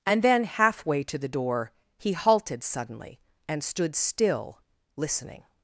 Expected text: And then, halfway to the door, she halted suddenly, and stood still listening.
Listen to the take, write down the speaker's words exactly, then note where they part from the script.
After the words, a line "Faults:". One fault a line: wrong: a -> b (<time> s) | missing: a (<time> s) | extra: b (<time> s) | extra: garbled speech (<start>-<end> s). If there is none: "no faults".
And then, halfway to the door, he halted suddenly, and stood still listening.
Faults:
wrong: she -> he (2.0 s)